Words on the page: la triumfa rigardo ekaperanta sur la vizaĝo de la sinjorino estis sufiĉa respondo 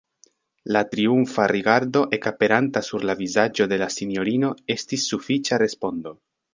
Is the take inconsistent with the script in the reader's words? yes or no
no